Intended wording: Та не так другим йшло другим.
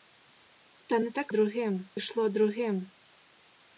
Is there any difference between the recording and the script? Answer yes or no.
no